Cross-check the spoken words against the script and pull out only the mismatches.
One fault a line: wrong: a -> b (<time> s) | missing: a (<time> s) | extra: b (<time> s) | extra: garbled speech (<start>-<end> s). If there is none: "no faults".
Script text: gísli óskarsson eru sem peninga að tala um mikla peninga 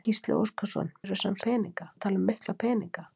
no faults